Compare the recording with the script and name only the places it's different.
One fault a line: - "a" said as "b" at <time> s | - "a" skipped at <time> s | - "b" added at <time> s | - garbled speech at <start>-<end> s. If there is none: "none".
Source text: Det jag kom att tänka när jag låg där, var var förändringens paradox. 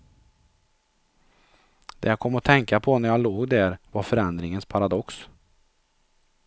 - "på" added at 2.8 s
- "var" skipped at 4.0 s